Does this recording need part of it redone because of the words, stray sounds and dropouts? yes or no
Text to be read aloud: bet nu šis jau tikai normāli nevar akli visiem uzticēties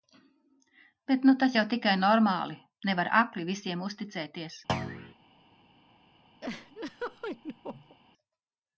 yes